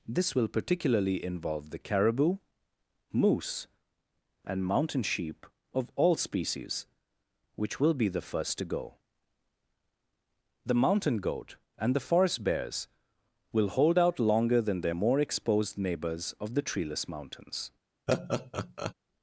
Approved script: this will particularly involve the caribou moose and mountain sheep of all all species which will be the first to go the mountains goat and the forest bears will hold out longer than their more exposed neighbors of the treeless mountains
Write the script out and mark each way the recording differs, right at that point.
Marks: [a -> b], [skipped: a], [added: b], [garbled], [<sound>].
this will particularly involve the caribou moose and mountain sheep of all [skipped: all] species which will be the first to go the [mountains -> mountain] goat and the forest bears will hold out longer than their more exposed neighbors of the treeless mountains [laugh]